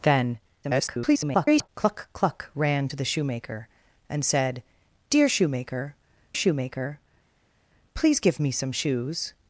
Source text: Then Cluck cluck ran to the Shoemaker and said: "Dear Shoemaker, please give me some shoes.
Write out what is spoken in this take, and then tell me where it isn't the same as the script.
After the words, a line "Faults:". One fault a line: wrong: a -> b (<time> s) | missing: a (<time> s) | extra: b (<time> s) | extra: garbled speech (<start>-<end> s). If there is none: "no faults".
Then [garbled] Cluck cluck ran to the Shoemaker and said: "Dear Shoemaker Shoemaker, please give me some shoes.
Faults:
extra: garbled speech (0.6-1.7 s)
extra: Shoemaker (6.3 s)